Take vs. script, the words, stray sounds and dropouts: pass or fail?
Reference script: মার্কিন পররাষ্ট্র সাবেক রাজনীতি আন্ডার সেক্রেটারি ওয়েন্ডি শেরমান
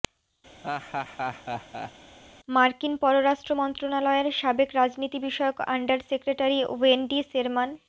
fail